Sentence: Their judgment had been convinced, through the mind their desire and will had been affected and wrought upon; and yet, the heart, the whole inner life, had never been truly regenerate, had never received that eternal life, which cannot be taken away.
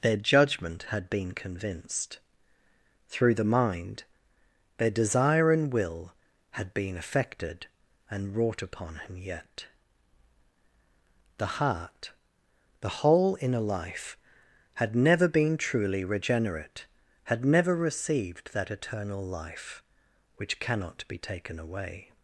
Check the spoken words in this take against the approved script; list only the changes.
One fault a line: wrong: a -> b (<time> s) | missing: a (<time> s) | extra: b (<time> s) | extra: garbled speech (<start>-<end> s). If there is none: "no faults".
wrong: and -> him (8.9 s)